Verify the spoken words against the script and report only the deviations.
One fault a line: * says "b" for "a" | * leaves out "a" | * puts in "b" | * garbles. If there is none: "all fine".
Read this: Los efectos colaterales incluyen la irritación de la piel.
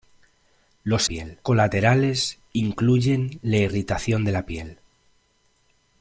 * says "piel" for "efectos"